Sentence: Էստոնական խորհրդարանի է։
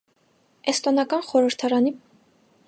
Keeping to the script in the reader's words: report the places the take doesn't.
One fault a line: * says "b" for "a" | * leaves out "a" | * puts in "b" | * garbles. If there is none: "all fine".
all fine